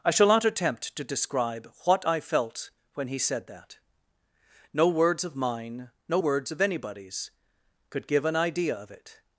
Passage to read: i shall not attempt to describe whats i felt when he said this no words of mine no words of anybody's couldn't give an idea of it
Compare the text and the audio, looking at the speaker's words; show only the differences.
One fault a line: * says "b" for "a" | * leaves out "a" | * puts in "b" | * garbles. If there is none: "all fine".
* says "what" for "whats"
* says "that" for "this"
* says "could" for "couldn't"